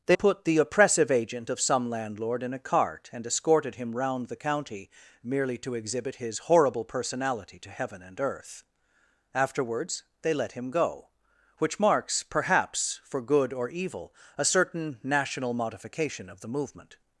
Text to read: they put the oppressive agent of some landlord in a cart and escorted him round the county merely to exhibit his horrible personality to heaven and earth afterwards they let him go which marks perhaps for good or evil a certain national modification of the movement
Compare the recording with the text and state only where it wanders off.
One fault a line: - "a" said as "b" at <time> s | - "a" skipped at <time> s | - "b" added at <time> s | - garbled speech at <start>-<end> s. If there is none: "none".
none